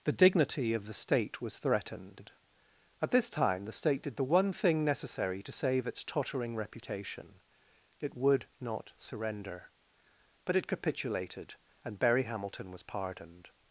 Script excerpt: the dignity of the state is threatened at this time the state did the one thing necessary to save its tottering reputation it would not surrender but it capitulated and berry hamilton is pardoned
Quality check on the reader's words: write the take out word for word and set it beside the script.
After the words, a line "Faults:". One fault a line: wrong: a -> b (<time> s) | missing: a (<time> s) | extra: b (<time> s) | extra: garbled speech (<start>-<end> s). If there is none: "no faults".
the dignity of the state was threatened at this time the state did the one thing necessary to save its tottering reputation it would not surrender but it capitulated and berry hamilton was pardoned
Faults:
wrong: is -> was (1.4 s)
wrong: is -> was (12.7 s)